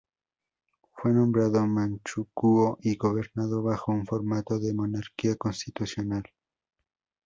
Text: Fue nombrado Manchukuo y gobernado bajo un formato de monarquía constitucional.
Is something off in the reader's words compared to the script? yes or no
no